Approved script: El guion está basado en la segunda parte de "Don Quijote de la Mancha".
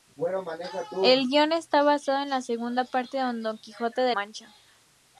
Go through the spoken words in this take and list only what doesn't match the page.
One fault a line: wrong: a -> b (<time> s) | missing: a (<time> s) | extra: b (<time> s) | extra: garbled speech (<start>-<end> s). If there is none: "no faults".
missing: la (4.2 s)